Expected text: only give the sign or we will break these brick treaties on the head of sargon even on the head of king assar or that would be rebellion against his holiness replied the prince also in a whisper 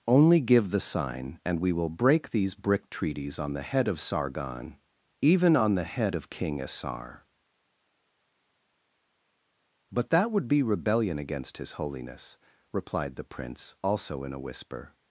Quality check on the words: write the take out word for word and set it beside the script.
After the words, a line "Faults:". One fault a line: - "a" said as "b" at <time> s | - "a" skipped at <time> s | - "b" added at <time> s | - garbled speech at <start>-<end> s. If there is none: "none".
only give the sign and we will break these brick treaties on the head of sargon even on the head of king assar but that would be rebellion against his holiness replied the prince also in a whisper
Faults:
- "or" said as "and" at 1.4 s
- "or" said as "but" at 9.9 s